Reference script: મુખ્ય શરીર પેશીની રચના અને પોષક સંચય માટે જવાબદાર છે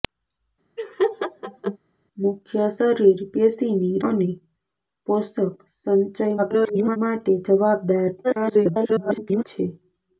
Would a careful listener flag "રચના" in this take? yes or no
yes